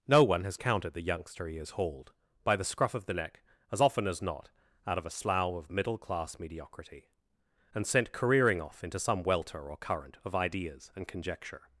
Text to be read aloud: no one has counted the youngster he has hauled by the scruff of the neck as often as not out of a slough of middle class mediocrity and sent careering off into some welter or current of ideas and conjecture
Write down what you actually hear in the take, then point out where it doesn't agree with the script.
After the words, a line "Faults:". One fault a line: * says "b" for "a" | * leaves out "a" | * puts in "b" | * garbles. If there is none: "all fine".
no one has counted the youngster he has hauled by the scruff of the neck as often as not out of a slough of middle class mediocrity and sent careering off into some welter or current of ideas and conjecture
Faults:
all fine